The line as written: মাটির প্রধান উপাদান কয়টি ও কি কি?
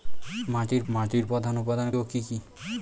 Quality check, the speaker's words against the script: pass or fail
fail